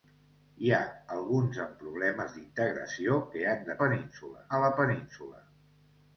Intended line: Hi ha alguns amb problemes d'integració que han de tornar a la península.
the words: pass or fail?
fail